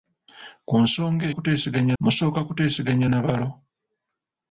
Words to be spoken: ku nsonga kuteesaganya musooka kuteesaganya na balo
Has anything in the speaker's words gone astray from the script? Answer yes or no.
no